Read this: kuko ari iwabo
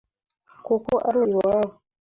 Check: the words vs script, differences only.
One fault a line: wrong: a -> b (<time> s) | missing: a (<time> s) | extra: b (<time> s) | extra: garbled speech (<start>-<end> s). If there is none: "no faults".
no faults